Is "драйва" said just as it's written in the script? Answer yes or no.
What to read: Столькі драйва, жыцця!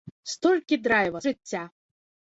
yes